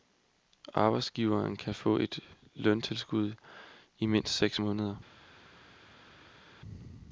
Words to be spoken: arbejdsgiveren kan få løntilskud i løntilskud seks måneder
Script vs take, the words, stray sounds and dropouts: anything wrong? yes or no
yes